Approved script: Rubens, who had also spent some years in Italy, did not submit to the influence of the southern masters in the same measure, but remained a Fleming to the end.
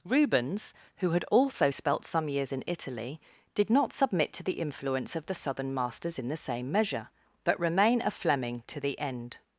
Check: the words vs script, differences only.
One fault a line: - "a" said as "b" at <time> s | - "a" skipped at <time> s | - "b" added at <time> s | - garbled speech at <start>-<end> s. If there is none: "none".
- "spent" said as "spelt" at 1.7 s
- "remained" said as "remain" at 7.6 s